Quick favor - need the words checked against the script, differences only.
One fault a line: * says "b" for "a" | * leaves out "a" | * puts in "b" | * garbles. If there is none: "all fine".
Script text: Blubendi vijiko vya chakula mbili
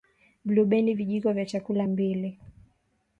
all fine